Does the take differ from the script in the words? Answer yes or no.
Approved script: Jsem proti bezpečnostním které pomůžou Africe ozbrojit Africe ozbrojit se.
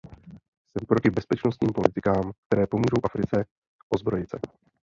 yes